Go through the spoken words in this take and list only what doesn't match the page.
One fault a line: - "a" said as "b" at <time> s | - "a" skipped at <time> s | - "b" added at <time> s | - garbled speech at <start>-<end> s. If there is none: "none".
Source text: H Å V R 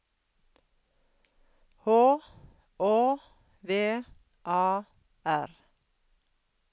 - "A" added at 4.4 s